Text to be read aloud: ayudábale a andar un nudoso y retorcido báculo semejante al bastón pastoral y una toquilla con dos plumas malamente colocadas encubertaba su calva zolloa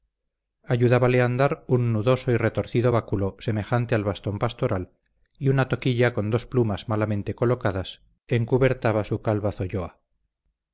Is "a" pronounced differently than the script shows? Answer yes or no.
no